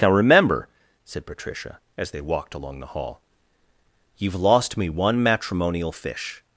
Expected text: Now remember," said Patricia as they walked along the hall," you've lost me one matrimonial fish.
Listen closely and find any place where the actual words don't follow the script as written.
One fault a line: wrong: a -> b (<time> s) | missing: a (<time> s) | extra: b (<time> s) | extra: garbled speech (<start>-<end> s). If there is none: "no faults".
no faults